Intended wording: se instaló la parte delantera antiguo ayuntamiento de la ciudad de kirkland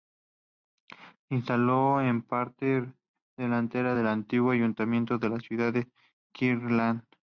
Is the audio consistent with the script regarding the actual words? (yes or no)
no